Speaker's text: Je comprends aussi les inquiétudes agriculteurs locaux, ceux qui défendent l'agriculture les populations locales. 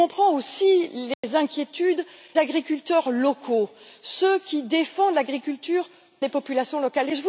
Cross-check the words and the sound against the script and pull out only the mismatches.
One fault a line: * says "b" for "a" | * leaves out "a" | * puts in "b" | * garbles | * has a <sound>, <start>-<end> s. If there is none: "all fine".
* has a dropout, 1.1-1.2 s